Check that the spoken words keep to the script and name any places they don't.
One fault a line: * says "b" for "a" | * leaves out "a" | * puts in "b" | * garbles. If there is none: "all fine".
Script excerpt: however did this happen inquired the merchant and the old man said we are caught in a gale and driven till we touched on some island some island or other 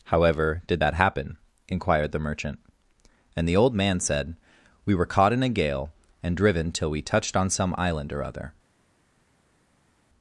* says "that" for "this"
* says "were" for "are"
* leaves out "some island"